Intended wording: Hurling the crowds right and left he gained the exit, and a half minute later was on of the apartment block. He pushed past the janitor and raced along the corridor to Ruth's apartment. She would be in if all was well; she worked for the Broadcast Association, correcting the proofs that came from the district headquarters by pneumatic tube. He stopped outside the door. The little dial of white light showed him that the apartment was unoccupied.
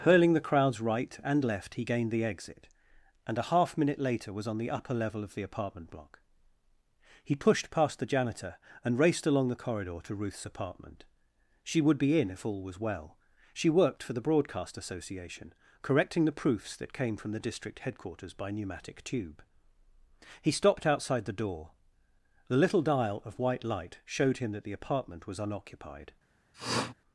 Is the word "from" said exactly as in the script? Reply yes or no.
yes